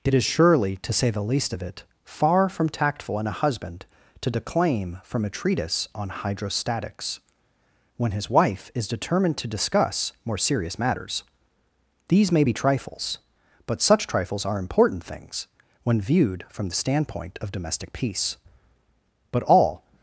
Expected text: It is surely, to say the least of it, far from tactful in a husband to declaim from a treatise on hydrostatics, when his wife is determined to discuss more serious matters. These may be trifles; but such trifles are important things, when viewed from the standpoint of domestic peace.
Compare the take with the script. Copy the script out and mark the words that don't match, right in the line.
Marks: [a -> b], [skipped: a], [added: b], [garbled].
It is surely, to say the least of it, far from tactful in a husband to declaim from a treatise on hydrostatics, when his wife is determined to discuss more serious matters. These may be trifles; but such trifles are important things, when viewed from the standpoint of domestic peace. [added: But all]